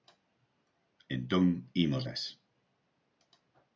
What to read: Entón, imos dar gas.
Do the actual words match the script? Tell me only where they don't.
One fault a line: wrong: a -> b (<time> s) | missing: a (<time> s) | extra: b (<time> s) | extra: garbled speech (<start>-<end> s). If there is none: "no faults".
missing: dar (2.0 s)